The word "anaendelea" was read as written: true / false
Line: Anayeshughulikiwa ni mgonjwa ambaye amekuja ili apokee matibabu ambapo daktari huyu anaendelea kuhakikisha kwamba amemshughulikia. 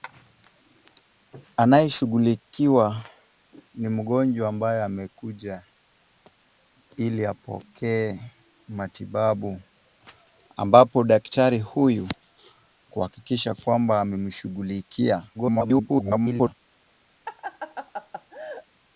false